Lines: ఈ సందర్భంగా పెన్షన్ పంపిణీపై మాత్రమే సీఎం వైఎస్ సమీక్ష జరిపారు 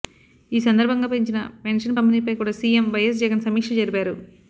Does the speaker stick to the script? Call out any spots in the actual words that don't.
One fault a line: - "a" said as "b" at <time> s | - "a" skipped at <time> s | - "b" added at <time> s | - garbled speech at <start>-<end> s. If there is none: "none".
- "పెంచిన" added at 1.1 s
- "మాత్రమే" said as "కూడా" at 2.3 s
- "జగన్" added at 3.2 s